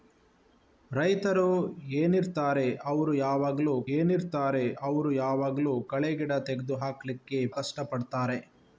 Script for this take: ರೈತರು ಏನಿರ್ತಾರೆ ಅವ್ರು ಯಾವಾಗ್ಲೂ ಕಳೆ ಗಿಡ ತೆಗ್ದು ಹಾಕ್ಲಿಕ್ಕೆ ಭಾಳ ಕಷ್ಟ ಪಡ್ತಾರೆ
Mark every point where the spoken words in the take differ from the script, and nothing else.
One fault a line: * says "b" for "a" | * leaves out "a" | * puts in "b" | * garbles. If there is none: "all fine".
* puts in "ಏನಿರ್ತಾರೆ ಅವ್ರು ಯಾವಾಗ್ಲೂ"
* leaves out "ಭಾಳ"